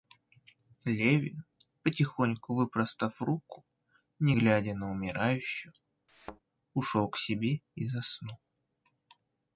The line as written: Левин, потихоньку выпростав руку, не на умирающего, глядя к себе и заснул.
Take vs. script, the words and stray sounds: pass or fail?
fail